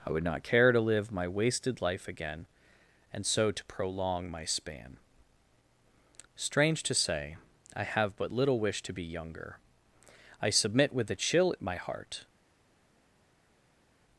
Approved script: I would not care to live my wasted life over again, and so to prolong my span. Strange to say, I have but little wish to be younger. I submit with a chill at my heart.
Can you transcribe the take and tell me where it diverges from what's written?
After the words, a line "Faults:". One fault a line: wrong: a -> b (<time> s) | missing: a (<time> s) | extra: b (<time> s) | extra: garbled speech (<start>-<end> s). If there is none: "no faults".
I would not care to live my wasted life again, and so to prolong my span. Strange to say, I have but little wish to be younger. I submit with a chill at my heart.
Faults:
missing: over (2.1 s)